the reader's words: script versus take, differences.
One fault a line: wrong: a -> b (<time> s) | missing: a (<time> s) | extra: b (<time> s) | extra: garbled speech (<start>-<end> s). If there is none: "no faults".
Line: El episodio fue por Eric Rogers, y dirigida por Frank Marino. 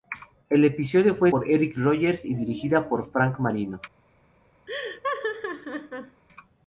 no faults